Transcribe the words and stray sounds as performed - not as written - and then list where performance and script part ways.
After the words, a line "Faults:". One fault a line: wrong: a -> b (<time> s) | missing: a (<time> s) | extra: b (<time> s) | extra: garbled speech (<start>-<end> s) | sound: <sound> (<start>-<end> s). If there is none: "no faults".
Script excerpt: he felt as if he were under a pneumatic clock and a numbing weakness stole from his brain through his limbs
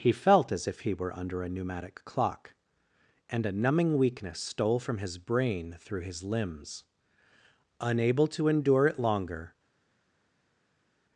he felt as if he were under a pneumatic clock and a numbing weakness stole from his brain through his limbs unable to endure it longer
Faults:
extra: unable to endure it longer (7.8 s)